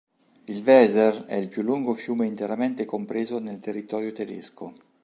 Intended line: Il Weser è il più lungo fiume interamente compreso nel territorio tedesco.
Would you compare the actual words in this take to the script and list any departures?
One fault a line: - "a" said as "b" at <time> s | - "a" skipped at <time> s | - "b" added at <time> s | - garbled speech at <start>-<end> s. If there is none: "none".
none